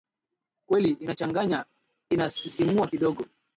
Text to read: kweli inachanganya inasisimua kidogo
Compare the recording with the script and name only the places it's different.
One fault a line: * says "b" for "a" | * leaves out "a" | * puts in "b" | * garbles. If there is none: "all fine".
all fine